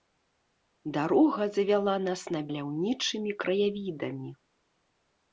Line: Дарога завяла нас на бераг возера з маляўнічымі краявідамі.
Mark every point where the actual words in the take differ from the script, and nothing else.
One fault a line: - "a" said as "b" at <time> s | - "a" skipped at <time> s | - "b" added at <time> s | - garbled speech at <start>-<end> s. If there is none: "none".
- "бераг возера з" skipped at 2.4 s